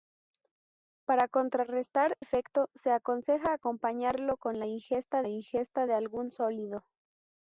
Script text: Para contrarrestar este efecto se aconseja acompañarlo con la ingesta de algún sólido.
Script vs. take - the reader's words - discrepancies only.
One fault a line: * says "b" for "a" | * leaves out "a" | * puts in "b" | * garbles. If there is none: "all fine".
* leaves out "este"
* puts in "ingesta"